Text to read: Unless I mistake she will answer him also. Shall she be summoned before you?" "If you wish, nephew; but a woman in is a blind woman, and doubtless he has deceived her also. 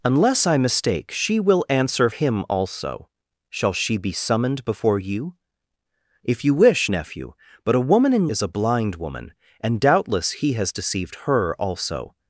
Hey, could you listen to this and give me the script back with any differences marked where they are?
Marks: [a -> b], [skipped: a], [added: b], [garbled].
Unless I mistake she will answer him also. Shall she be summoned before you?" "If you wish, nephew; but a woman in is a blind woman, and doubtless he has deceived her also.